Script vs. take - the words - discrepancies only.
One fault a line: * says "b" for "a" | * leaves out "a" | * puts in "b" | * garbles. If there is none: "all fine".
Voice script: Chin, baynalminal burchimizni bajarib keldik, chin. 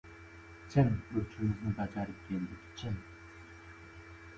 * leaves out "baynalminal"